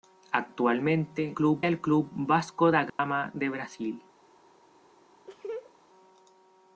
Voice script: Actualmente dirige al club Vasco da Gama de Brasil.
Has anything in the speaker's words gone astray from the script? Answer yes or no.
yes